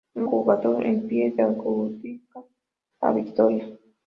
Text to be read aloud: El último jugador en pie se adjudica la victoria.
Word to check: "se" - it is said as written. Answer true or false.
false